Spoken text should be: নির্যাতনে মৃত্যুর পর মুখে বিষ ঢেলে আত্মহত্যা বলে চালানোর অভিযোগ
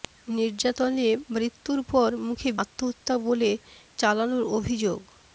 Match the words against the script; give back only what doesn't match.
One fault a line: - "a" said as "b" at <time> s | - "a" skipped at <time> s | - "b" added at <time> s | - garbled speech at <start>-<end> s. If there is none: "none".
- "বিষ ঢেলে" skipped at 2.5 s